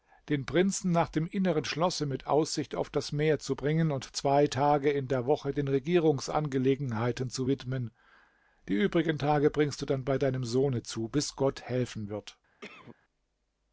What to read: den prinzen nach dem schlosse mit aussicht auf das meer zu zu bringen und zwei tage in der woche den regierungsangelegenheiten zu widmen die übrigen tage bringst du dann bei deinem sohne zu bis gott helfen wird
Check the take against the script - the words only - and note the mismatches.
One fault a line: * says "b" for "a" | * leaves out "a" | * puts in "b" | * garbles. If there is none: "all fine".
* puts in "inneren"
* leaves out "zu"